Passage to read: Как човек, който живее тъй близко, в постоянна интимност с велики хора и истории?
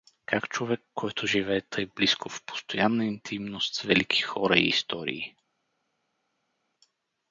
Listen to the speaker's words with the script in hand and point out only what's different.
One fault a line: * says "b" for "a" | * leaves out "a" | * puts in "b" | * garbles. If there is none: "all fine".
all fine